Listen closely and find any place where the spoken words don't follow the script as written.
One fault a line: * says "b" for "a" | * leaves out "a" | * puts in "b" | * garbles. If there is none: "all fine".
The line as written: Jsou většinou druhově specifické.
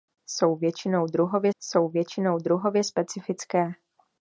* puts in "jsou většinou druhově"